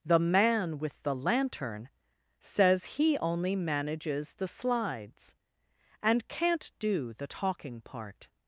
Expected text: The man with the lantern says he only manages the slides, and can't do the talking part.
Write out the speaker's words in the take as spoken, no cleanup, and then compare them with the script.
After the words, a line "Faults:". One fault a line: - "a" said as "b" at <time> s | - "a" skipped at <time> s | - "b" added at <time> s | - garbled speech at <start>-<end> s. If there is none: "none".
The man with the lantern says he only manages the slides, and can't do the talking part.
Faults:
none